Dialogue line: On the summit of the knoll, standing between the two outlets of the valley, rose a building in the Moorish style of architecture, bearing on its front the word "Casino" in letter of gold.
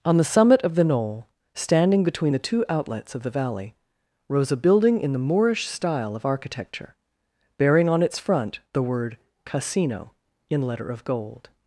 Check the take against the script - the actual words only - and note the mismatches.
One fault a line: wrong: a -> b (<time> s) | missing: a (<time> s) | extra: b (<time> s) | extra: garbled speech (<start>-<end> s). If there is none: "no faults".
no faults